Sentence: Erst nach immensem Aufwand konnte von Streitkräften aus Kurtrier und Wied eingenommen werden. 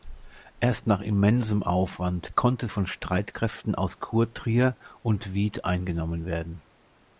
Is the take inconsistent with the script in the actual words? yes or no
no